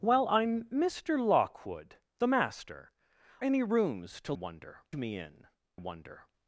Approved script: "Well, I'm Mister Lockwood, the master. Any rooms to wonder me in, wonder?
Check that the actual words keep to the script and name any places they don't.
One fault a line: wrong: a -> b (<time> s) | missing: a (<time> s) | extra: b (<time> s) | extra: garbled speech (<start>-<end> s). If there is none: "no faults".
no faults